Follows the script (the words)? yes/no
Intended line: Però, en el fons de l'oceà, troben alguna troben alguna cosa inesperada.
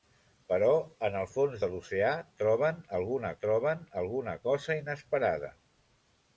yes